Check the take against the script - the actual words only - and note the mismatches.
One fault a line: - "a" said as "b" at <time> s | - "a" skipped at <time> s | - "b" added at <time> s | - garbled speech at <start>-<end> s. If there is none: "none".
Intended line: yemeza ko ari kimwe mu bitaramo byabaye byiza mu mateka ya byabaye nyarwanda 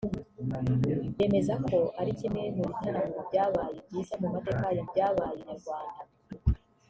none